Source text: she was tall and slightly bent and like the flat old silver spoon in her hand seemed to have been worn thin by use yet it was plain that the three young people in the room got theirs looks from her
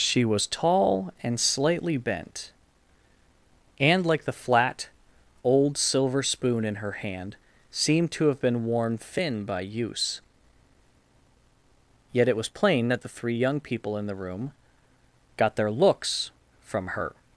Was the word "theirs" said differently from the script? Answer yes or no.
yes